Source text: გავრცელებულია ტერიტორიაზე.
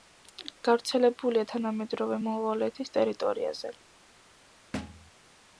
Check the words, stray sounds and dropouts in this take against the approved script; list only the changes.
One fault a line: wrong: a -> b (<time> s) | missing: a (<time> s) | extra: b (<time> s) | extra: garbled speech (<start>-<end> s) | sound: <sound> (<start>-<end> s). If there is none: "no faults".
extra: თანამედროვე მონღოლეთის (1.5 s)
sound: thud (4.7-5.1 s)